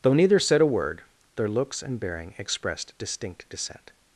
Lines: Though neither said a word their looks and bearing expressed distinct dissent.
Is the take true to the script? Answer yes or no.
yes